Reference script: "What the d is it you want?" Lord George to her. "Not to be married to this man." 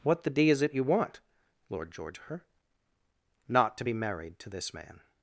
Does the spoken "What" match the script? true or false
true